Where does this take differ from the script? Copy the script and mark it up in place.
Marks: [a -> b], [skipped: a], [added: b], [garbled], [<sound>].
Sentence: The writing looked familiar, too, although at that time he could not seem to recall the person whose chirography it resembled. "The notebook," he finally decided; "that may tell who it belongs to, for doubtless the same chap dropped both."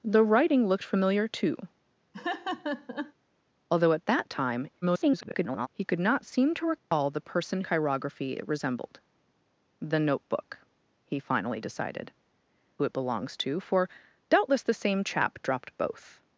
The writing looked familiar, too, [laugh] although at that time [garbled] he could not seem to recall [dropout] the person [skipped: whose] chirography it resembled. "The notebook," he finally decided; [skipped: "that may tell] who it belongs to, for doubtless the same chap dropped both."